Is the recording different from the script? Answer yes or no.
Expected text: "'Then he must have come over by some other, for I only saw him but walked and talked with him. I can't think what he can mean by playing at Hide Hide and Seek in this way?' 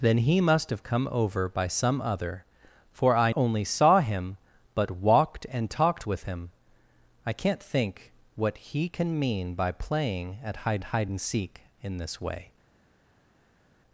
no